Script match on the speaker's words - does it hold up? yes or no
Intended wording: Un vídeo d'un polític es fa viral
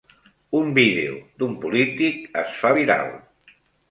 yes